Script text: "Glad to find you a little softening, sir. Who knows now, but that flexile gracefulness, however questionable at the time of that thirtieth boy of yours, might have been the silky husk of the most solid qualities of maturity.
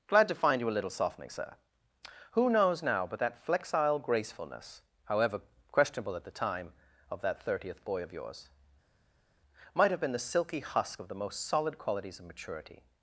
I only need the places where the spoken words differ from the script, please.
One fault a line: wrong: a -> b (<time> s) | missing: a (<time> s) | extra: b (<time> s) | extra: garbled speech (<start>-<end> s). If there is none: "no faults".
no faults